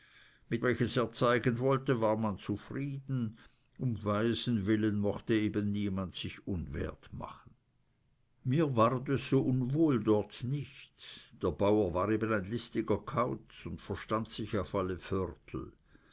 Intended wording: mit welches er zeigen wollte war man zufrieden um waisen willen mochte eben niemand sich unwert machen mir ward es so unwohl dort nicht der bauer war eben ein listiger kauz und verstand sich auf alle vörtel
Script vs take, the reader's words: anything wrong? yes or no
no